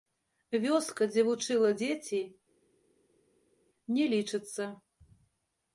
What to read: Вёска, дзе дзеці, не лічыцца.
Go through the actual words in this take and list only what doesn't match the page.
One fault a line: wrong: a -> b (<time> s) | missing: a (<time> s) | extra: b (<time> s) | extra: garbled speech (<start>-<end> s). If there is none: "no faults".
extra: вучыла (1.3 s)